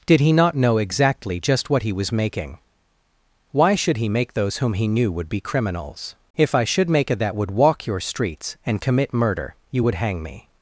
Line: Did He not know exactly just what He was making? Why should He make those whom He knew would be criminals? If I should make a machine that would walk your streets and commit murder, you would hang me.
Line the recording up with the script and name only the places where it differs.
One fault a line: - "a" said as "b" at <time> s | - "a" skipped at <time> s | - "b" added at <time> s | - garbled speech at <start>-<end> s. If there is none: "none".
- "machine" skipped at 7.2 s